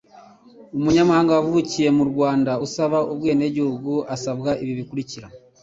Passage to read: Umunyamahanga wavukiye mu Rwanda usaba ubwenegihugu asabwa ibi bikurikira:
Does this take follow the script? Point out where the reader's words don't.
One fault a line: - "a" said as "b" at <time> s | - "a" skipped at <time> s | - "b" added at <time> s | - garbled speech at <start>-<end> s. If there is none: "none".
none